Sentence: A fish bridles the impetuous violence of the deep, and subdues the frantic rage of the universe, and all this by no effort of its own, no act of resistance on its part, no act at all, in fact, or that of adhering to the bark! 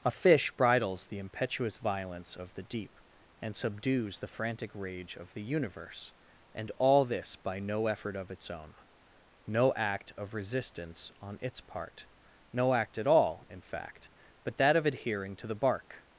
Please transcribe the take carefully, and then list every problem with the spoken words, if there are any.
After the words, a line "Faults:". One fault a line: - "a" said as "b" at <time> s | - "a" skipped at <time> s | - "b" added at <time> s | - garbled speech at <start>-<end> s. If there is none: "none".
A fish bridles the impetuous violence of the deep, and subdues the frantic rage of the universe, and all this by no effort of its own, no act of resistance on its part, no act at all, in fact, but that of adhering to the bark!
Faults:
- "or" said as "but" at 14.4 s